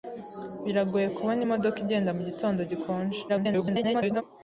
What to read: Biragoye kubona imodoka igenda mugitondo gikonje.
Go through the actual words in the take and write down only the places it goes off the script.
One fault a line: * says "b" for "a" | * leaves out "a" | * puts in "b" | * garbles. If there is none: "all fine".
* garbles